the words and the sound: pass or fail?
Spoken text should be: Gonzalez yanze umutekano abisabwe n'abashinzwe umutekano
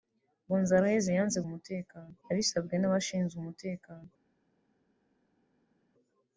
pass